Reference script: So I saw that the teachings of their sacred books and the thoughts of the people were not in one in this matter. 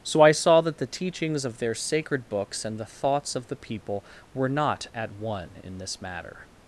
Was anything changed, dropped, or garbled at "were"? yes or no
no